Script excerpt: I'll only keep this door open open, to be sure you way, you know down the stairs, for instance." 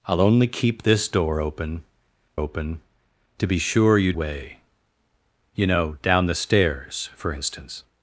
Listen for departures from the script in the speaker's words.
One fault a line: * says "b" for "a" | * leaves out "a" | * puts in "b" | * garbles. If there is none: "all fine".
all fine